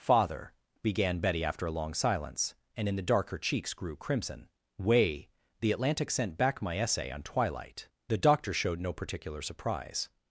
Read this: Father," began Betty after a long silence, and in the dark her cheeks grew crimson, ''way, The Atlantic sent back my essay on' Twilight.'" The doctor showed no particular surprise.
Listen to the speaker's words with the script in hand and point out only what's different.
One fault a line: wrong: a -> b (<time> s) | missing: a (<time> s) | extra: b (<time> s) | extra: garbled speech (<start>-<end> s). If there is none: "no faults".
no faults